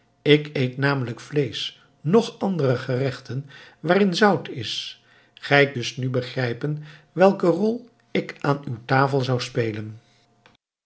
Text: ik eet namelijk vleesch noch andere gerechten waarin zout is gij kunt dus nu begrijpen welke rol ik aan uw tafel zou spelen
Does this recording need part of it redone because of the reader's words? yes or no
yes